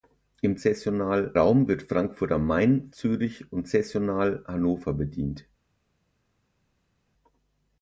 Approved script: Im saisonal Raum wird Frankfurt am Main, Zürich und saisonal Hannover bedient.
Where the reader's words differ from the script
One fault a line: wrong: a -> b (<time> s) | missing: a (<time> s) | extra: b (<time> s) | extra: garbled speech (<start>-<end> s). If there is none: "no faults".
no faults